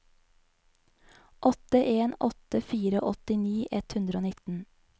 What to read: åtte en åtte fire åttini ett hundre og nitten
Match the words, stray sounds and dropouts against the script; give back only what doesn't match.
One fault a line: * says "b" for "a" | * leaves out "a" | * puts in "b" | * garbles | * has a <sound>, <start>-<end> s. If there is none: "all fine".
all fine